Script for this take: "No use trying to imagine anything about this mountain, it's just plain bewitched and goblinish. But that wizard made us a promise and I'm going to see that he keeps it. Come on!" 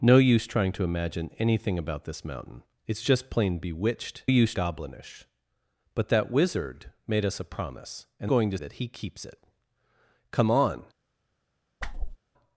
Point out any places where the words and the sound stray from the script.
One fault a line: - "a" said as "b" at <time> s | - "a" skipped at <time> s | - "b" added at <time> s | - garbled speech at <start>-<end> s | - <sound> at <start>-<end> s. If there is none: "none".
- "and" said as "use" at 4.2 s
- "I'm" skipped at 8.3 s
- "see" skipped at 8.6 s
- whoosh at 11.8-12.2 s